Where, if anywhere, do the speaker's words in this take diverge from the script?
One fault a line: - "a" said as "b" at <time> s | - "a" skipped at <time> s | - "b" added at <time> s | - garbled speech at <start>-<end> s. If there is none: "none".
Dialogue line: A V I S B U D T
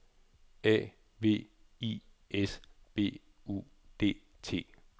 none